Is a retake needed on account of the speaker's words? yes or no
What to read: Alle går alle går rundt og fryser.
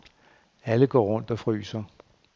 yes